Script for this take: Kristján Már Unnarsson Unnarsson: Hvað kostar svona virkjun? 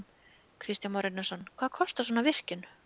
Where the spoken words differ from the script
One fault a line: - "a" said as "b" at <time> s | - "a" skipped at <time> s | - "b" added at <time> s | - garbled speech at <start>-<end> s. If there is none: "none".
- "Unnarsson" skipped at 1.4 s